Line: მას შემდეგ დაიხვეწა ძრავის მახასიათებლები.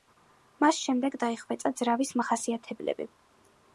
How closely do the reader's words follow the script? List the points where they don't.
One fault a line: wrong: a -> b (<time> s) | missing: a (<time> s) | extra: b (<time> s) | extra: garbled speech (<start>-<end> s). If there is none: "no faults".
no faults